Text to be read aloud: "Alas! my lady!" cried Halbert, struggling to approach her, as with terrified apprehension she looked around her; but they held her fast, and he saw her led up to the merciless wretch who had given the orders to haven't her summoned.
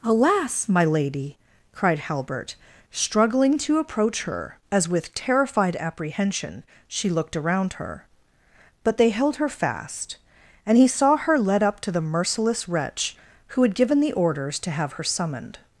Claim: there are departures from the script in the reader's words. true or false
true